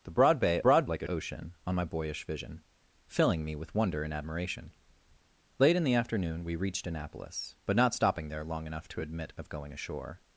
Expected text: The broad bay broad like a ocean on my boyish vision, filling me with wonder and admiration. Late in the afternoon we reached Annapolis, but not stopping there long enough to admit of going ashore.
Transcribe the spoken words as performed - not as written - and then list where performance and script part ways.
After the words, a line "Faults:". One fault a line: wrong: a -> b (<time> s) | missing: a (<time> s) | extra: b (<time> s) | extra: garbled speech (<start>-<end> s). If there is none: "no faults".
The broad bay broad like a ocean on my boyish vision, filling me with wonder and admiration. Late in the afternoon we reached Annapolis, but not stopping there long enough to admit of going ashore.
Faults:
no faults